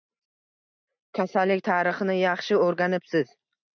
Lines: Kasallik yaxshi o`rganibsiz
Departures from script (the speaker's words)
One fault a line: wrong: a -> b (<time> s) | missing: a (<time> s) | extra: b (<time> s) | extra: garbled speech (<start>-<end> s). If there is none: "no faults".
extra: tarixini (1.7 s)